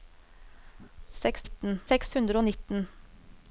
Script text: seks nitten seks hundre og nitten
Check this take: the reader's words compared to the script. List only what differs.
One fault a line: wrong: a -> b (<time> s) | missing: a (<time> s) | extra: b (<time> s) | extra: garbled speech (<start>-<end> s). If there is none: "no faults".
no faults